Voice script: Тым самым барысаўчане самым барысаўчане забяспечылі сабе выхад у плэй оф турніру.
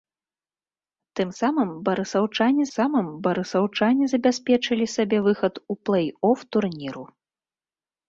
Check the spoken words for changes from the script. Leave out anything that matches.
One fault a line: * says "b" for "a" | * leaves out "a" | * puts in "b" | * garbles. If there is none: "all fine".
all fine